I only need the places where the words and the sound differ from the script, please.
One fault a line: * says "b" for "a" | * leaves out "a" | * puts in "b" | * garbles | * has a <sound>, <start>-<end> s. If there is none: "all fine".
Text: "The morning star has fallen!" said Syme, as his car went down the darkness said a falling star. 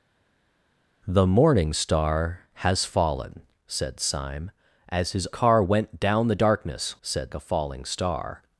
all fine